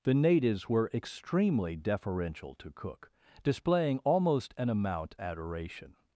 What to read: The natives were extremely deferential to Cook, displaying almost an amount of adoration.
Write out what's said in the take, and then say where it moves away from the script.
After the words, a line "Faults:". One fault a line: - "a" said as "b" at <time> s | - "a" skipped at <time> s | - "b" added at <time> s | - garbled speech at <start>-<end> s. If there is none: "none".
The natives were extremely deferential to Cook, displaying almost an amount adoration.
Faults:
- "of" skipped at 5.2 s